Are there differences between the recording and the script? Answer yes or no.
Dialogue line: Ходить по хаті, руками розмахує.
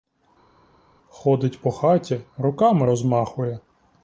no